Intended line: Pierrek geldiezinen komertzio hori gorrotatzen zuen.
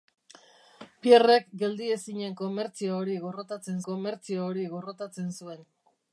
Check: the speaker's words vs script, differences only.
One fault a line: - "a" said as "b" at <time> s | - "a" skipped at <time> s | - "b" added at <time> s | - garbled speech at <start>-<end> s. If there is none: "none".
- "komertzio hori gorrotatzen" added at 3.9 s